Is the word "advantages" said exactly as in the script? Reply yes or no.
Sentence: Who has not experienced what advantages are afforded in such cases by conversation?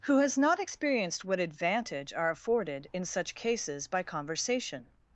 no